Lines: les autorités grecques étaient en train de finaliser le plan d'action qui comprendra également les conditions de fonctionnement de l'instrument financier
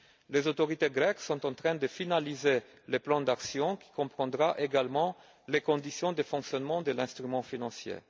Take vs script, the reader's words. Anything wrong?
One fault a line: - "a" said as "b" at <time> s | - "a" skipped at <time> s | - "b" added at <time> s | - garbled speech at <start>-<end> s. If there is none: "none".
- "étaient" said as "sont" at 1.2 s